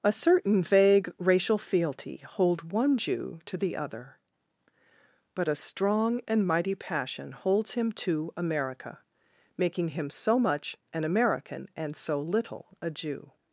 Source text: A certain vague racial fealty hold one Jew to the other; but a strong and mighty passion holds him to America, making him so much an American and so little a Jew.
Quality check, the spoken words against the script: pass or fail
pass